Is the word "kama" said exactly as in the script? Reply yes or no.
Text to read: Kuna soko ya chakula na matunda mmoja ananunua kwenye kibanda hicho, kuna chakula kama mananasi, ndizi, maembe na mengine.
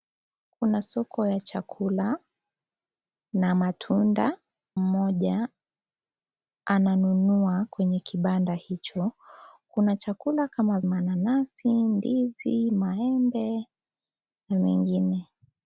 yes